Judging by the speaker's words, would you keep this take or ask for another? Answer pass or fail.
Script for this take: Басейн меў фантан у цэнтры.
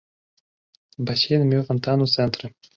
pass